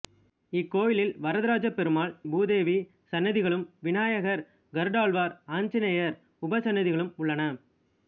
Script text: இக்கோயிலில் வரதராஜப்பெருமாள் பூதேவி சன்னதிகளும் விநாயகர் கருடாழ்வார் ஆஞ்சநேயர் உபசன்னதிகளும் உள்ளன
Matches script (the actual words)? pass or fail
pass